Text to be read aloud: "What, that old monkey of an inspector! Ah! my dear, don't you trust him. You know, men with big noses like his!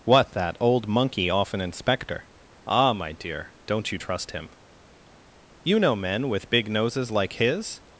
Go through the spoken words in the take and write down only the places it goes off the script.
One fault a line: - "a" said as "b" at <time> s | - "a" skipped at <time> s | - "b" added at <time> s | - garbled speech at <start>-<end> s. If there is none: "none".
- "of" said as "off" at 1.3 s